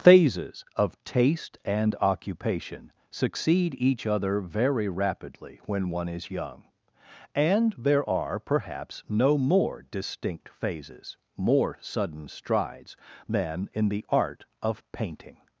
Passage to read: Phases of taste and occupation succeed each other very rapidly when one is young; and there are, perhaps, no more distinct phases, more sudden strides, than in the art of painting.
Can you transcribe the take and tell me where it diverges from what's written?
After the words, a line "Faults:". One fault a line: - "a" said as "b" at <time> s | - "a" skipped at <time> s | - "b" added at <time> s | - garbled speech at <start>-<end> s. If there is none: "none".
Phases of taste and occupation succeed each other very rapidly when one is young; and there are, perhaps, no more distinct phases, more sudden strides, than in the art of painting.
Faults:
none